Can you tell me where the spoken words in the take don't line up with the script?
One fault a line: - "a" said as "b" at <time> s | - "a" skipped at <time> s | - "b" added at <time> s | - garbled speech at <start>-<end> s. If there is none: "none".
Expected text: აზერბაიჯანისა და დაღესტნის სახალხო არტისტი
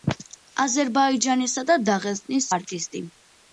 - "სახალხო" skipped at 2.5 s